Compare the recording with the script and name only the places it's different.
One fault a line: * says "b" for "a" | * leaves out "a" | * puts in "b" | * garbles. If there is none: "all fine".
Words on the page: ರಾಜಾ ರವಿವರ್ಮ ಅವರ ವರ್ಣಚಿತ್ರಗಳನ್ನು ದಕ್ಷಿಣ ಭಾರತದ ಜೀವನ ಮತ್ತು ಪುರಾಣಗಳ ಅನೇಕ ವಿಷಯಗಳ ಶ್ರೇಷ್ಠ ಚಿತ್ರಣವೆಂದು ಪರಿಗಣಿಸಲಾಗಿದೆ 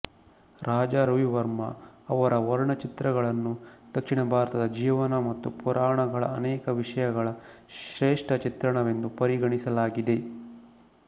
all fine